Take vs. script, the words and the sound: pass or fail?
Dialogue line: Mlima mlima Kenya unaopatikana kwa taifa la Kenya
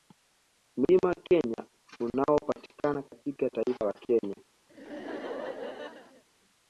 fail